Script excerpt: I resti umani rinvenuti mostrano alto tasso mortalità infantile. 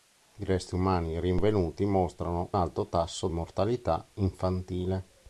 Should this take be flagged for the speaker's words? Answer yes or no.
no